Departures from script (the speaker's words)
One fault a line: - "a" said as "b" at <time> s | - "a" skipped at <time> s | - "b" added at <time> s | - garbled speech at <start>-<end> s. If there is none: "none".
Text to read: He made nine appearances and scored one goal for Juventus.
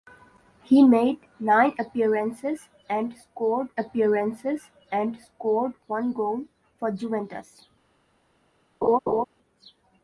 - "appearances and scored" added at 3.8 s